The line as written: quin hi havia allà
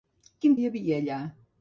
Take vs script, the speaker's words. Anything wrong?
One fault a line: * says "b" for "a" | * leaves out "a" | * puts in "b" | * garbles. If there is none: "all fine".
all fine